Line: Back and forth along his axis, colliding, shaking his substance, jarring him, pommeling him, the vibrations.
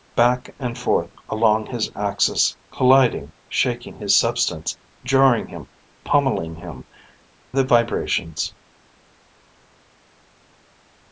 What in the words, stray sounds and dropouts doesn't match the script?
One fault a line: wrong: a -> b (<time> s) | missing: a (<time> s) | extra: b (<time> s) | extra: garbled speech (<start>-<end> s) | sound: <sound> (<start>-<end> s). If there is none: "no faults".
no faults